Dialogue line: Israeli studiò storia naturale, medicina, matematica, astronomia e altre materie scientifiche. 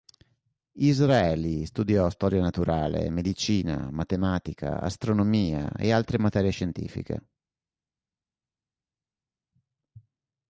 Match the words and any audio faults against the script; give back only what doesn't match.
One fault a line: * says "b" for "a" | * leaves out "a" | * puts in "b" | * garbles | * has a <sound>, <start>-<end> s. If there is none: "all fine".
all fine